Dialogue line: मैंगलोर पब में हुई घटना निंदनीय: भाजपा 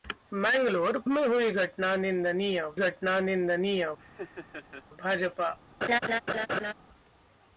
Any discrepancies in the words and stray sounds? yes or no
yes